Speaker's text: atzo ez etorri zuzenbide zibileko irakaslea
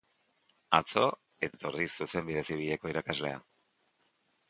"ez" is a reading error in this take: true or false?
false